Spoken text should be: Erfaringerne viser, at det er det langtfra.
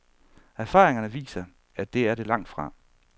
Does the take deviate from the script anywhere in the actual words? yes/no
no